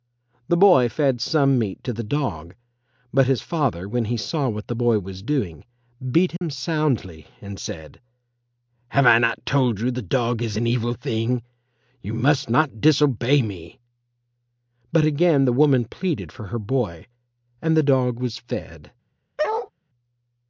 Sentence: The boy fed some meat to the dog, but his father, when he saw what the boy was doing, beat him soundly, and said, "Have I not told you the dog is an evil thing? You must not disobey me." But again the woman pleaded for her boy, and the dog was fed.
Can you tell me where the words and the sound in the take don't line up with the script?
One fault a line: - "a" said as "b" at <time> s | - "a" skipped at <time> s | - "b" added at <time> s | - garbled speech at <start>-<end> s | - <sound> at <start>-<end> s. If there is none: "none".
- dropout at 6.4-6.4 s
- bark at 19.4-19.7 s